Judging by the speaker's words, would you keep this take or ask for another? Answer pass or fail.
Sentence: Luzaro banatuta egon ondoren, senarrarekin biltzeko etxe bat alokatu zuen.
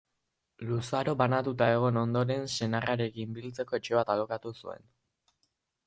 pass